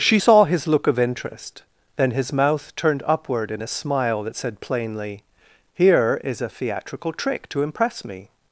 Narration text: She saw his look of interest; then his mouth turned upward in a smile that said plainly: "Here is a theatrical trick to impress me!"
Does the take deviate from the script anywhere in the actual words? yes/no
no